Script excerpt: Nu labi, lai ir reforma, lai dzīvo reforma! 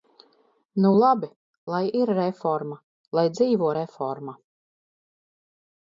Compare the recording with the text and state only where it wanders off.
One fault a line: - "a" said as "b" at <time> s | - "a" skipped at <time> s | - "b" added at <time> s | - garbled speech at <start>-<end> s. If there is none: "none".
none